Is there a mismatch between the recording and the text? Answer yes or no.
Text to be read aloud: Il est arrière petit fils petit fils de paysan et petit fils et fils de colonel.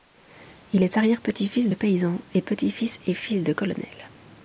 yes